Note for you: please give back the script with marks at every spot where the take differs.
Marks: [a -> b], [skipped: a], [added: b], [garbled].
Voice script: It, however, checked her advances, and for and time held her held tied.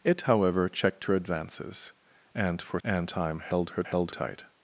It, however, checked her advances, and for and time held her held tied.